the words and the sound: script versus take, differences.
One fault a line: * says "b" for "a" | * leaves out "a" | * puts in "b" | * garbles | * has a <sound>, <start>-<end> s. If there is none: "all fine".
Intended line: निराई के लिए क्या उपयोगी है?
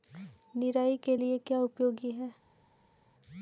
all fine